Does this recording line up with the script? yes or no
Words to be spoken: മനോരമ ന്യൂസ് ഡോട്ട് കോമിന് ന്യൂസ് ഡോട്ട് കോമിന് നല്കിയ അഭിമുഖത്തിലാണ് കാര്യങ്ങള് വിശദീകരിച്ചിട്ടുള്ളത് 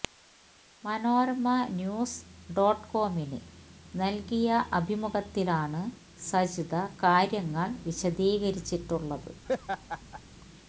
no